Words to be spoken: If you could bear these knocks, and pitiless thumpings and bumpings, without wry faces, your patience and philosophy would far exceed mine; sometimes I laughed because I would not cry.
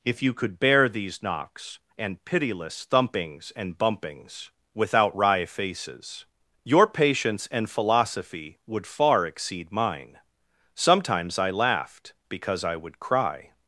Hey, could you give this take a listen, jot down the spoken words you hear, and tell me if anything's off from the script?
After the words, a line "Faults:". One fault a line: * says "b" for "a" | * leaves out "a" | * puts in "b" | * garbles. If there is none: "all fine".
If you could bear these knocks, and pitiless thumpings and bumpings, without wry faces, your patience and philosophy would far exceed mine; sometimes I laughed because I would cry.
Faults:
* leaves out "not"